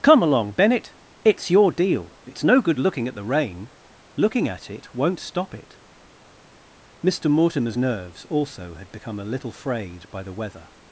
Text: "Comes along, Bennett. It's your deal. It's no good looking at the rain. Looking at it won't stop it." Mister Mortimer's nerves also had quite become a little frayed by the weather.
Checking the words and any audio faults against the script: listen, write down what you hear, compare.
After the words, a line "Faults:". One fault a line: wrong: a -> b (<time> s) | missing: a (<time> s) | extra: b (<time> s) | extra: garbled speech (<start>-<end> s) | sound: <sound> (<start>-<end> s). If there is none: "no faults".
"Come along, Bennett. It's your deal. It's no good looking at the rain. Looking at it won't stop it." Mister Mortimer's nerves also had become a little frayed by the weather.
Faults:
wrong: Comes -> Come (0.0 s)
missing: quite (8.9 s)